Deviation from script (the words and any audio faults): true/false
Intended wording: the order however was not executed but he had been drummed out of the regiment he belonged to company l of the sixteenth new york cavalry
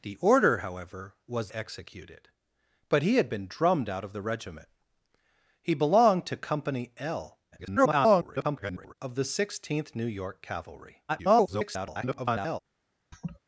true